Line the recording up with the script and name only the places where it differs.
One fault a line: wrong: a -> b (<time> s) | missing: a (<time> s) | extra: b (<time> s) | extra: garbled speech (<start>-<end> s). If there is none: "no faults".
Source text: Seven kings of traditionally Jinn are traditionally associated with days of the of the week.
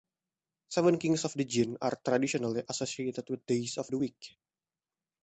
wrong: traditionally -> the (1.3 s)
missing: of the (4.0 s)